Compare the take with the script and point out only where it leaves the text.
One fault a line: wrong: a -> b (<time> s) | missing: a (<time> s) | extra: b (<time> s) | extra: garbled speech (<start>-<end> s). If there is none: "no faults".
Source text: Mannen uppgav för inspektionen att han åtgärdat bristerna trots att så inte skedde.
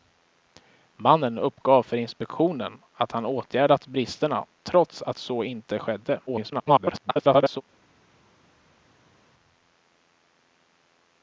extra: garbled speech (6.3-7.6 s)